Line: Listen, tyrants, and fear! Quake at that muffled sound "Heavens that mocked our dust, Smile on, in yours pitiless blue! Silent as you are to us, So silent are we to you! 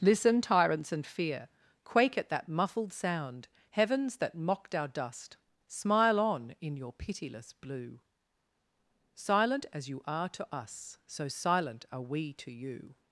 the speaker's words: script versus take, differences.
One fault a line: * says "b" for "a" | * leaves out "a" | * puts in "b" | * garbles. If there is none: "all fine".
* says "your" for "yours"